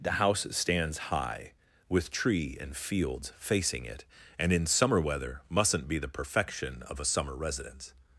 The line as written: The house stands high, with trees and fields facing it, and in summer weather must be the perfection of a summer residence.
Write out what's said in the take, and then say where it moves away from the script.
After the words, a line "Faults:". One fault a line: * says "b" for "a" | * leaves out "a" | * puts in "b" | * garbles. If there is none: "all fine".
The house stands high, with tree and fields facing it, and in summer weather mustn't be the perfection of a summer residence.
Faults:
* says "tree" for "trees"
* says "mustn't" for "must"